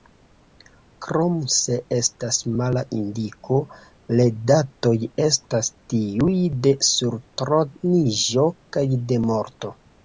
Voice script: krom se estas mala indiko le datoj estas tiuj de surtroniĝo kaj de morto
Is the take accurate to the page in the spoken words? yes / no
yes